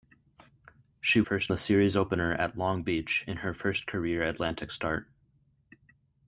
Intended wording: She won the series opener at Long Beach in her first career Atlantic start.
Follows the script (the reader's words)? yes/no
no